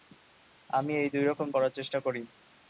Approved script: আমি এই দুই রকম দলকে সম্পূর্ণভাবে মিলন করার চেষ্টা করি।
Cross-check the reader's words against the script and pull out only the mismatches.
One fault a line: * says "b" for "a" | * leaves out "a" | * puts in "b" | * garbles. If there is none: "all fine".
* leaves out "দলকে সম্পূর্ণভাবে মিলন"